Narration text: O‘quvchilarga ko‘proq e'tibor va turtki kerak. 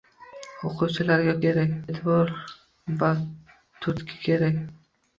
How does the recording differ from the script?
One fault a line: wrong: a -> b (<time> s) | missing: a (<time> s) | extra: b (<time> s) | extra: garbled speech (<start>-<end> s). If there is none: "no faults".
wrong: ko‘proq -> kerak (1.5 s)